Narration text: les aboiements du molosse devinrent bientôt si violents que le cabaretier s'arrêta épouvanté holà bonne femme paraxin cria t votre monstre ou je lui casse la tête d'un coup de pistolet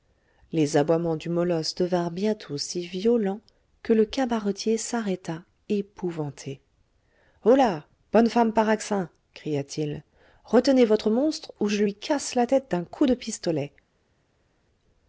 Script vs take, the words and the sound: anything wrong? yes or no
yes